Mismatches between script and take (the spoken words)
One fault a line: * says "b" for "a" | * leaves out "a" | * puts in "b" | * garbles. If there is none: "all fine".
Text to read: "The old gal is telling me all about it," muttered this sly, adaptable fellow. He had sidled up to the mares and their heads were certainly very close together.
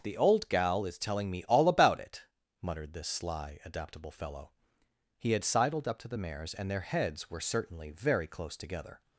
all fine